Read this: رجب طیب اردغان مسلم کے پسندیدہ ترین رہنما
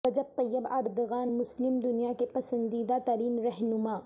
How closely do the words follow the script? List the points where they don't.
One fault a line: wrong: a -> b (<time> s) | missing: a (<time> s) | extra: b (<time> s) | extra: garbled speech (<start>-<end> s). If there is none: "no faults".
extra: دنیا (1.8 s)